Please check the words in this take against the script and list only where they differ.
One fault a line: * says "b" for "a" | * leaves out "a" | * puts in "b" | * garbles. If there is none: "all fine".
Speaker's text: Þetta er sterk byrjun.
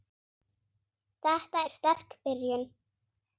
all fine